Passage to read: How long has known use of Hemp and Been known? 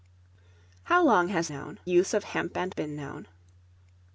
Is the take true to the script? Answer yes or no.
yes